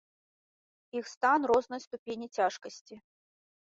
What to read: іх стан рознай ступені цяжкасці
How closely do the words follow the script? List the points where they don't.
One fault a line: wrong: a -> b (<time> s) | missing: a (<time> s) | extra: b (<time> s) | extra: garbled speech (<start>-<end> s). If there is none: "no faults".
no faults